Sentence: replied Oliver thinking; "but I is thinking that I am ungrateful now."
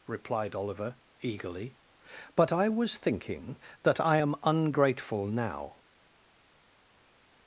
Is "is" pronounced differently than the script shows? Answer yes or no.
yes